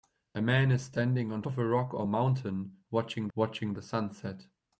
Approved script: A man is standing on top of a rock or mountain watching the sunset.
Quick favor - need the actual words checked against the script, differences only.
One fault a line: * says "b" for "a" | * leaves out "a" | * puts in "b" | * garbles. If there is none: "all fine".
* leaves out "top"
* puts in "watching"